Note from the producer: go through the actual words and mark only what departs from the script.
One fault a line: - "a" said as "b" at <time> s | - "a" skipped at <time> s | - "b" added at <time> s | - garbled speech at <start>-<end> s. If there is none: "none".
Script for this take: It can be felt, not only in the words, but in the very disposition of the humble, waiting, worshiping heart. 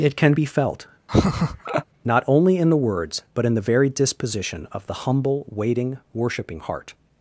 none